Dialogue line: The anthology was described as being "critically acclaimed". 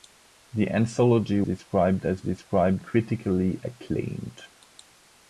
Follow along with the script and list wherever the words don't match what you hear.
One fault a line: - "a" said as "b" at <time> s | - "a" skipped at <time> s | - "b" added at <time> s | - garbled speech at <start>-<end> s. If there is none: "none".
- "was" skipped at 1.4 s
- "being" said as "described" at 2.2 s